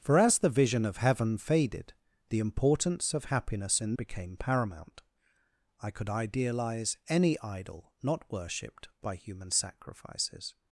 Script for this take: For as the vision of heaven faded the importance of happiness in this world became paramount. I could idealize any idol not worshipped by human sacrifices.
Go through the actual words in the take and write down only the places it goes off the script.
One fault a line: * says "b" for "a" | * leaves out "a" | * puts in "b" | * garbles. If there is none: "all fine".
* leaves out "this world"